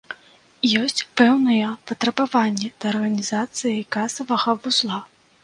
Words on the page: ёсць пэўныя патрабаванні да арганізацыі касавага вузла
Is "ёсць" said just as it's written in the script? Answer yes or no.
yes